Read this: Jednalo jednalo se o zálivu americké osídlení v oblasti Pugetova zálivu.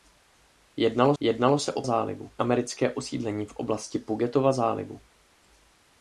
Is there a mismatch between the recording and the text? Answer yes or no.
no